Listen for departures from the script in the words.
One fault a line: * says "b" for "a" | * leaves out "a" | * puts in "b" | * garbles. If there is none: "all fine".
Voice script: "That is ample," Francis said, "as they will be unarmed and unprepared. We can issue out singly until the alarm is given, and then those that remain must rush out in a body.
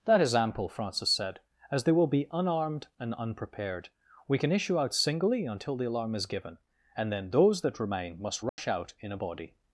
all fine